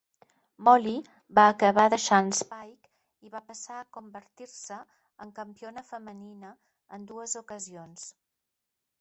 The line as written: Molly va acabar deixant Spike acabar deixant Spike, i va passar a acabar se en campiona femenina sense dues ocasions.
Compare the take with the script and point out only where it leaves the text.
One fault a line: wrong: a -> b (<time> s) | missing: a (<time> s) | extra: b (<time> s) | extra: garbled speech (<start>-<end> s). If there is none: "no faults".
missing: acabar deixant Spike (2.9 s)
wrong: acabar -> convertir (4.0 s)
wrong: sense -> en (7.0 s)